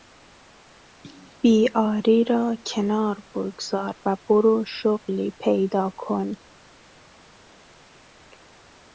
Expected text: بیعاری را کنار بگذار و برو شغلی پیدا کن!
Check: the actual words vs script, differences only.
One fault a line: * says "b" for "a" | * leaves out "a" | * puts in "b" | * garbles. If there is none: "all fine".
all fine